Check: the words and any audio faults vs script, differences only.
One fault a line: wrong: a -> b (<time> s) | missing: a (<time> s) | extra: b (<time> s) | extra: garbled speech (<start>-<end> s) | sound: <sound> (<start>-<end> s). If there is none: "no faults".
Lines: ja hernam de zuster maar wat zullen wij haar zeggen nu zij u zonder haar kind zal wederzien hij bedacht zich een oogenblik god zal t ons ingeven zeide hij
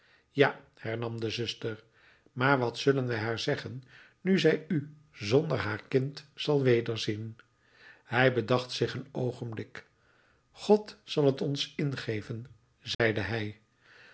sound: dropout (12.9-13.0 s)